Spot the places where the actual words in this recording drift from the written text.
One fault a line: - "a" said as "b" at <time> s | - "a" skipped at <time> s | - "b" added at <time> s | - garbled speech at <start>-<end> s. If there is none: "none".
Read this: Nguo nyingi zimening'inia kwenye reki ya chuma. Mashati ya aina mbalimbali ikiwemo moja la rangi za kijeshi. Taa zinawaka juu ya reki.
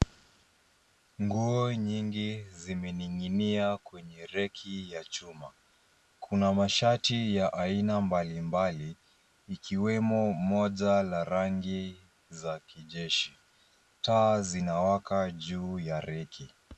- "Kuna" added at 6.2 s